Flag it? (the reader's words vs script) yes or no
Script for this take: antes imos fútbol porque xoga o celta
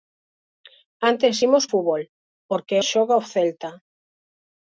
no